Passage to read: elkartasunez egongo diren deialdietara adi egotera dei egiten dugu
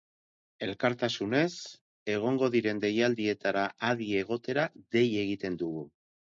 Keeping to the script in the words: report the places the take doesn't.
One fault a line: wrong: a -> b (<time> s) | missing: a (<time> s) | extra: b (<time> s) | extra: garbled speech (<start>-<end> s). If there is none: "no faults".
no faults